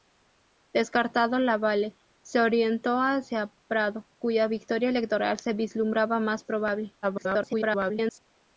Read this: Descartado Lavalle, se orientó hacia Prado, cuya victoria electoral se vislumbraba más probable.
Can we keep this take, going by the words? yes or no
no